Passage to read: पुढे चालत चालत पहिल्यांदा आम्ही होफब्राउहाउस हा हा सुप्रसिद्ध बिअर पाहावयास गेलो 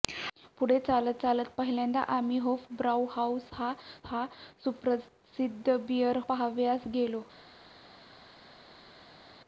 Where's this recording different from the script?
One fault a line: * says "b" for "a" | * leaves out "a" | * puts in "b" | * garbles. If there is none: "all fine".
all fine